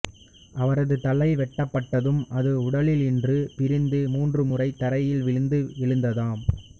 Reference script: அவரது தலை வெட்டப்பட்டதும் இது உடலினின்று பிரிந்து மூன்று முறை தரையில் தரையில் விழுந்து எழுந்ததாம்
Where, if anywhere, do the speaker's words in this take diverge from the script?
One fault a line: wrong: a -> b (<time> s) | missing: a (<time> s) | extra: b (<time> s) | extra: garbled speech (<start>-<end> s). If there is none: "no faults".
wrong: இது -> அது (2.4 s)
missing: தரையில் (5.2 s)